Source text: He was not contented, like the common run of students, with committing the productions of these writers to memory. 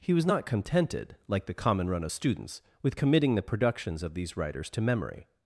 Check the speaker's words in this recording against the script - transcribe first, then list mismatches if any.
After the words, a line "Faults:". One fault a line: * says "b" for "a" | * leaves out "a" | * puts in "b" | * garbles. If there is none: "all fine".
He was not contented, like the common run of students, with committing the productions of these writers to memory.
Faults:
all fine